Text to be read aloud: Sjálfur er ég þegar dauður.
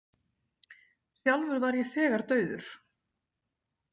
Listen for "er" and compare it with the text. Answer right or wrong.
wrong